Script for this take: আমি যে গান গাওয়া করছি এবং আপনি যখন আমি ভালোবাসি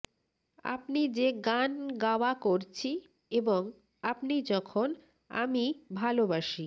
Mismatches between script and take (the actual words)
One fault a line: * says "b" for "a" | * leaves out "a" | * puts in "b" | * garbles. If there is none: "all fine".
* says "আপনি" for "আমি"